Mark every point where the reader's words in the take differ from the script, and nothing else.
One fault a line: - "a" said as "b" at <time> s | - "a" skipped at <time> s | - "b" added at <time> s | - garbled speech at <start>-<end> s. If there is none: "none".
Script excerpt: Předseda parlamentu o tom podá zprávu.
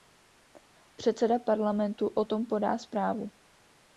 none